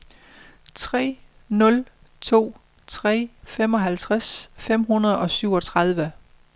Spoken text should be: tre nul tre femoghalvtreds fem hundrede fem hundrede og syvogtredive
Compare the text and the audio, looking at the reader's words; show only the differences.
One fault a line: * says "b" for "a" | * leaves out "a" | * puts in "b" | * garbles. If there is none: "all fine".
* puts in "to"
* leaves out "fem hundrede"